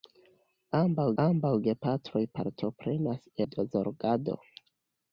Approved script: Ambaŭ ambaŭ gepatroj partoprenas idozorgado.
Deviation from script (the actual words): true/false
false